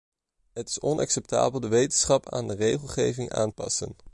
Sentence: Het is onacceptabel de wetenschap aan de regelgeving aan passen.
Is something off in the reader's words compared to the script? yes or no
no